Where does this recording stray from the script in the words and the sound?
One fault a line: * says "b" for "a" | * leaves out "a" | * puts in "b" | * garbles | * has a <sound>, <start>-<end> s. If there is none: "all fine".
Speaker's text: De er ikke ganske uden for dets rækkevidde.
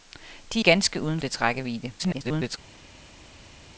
* leaves out "ikke"
* leaves out "for"
* garbles